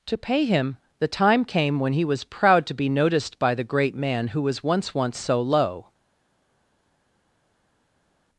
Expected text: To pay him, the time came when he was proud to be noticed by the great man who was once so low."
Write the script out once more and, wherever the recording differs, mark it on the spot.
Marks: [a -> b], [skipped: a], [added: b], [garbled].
To pay him, the time came when he was proud to be noticed by the great man who was once [added: once] so low."